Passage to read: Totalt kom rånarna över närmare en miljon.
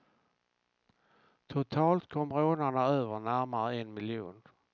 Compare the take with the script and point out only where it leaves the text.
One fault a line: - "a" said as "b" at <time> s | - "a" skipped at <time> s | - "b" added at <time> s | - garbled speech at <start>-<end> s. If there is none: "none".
none